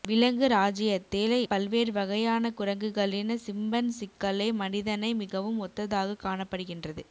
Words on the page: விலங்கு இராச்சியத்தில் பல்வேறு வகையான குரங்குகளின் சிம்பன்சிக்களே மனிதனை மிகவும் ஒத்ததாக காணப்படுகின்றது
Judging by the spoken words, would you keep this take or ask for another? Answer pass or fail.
pass